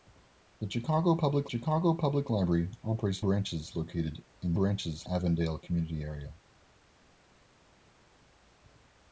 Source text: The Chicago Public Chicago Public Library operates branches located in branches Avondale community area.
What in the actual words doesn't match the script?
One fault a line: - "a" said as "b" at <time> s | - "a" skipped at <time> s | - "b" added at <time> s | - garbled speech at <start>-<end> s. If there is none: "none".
none